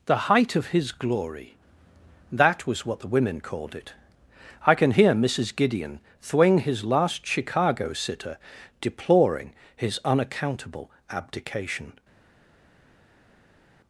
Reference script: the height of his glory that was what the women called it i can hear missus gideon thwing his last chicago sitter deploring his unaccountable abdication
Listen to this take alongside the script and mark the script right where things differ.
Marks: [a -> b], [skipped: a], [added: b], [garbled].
the height of his glory that was what the women called it i can hear missus gideon thwing his last chicago sitter deploring his unaccountable abdication